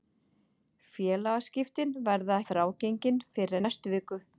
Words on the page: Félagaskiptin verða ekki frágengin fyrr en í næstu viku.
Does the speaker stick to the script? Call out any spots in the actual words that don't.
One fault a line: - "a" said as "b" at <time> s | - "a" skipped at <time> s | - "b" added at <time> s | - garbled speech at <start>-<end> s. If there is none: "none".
- "ekki" skipped at 2.4 s
- "en" skipped at 3.6 s